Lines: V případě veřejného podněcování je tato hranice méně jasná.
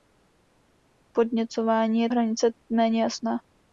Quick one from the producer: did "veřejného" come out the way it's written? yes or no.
no